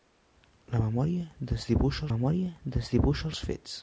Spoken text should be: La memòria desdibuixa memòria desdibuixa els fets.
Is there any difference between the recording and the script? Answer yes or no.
no